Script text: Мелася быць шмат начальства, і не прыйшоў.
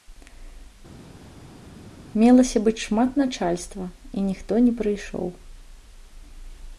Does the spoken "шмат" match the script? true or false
true